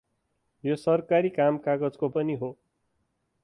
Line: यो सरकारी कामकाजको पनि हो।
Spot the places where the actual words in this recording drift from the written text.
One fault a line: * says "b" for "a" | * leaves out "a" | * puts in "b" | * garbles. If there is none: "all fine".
all fine